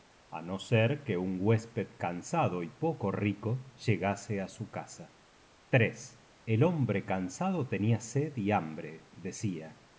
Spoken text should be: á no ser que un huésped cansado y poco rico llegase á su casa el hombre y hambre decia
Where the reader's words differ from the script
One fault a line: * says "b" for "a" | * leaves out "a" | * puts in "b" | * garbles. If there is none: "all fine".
* puts in "cansado tenia sed"